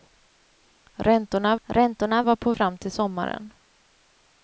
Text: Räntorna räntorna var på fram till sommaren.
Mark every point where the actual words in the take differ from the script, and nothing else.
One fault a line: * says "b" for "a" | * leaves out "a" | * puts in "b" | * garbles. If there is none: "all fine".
all fine